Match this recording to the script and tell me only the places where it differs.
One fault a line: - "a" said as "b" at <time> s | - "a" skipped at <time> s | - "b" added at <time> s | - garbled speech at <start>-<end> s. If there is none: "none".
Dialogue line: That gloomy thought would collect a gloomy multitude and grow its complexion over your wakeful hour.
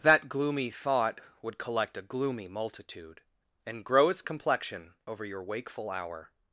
none